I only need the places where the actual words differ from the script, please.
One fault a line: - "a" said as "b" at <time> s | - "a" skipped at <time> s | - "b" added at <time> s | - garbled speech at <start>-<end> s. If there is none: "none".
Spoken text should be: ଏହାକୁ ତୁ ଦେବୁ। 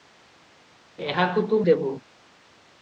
none